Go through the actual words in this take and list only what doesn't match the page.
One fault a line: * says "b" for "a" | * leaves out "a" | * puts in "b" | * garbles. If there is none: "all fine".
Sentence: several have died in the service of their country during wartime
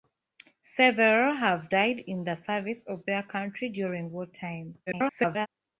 * garbles